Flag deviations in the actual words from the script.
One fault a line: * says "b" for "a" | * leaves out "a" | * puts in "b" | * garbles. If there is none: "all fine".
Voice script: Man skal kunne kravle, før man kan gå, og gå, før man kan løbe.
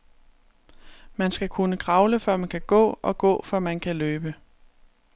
all fine